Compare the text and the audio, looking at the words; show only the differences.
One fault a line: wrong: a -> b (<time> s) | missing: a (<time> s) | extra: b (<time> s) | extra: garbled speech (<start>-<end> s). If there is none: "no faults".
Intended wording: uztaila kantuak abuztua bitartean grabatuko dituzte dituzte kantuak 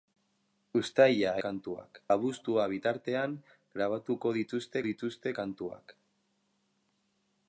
no faults